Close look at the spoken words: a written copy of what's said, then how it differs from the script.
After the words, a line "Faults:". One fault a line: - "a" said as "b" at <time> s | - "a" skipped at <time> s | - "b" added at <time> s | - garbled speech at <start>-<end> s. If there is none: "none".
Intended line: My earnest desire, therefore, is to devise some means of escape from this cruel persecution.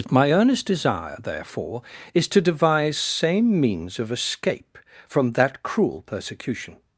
My earnest desire, therefore, is to devise same means of escape from that cruel persecution.
Faults:
- "some" said as "same" at 3.0 s
- "this" said as "that" at 5.3 s